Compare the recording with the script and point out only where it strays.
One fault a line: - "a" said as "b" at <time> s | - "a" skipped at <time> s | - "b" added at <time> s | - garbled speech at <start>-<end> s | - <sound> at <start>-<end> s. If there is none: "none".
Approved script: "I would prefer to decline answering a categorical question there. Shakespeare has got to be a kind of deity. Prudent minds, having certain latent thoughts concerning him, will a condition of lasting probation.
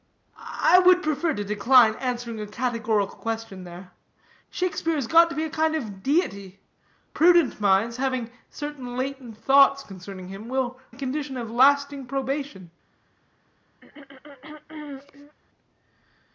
- throat clearing at 13.8-15.4 s